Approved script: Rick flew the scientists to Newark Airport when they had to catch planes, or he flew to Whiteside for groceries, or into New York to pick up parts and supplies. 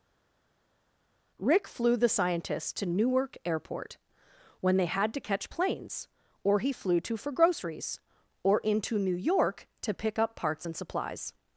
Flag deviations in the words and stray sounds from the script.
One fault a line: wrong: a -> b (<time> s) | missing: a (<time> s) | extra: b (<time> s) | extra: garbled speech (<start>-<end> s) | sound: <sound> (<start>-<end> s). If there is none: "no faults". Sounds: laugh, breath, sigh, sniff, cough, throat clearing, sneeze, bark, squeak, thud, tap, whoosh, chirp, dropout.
missing: Whiteside (7.2 s)